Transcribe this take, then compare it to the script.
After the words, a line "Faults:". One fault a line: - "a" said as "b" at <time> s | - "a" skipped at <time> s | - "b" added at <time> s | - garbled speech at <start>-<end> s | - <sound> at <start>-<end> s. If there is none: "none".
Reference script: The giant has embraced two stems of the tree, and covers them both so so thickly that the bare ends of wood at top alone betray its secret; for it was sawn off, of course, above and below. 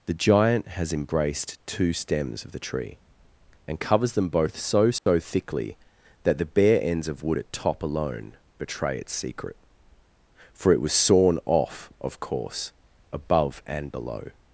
The giant has embraced two stems of the tree, and covers them both so so thickly that the bare ends of wood at top alone betray its secret; for it was sawn off, of course, above and below.
Faults:
- dropout at 5.0-5.1 s